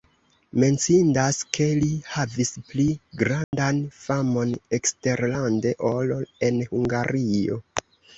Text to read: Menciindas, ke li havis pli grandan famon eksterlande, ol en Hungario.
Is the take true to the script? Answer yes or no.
yes